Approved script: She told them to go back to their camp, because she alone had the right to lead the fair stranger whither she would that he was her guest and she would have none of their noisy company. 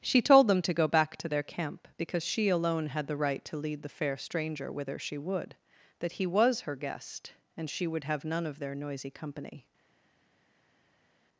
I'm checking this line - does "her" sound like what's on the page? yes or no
yes